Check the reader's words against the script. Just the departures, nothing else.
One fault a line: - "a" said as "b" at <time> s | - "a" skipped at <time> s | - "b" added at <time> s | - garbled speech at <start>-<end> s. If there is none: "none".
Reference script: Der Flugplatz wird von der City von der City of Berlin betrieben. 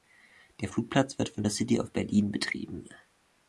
- "von der City" skipped at 1.8 s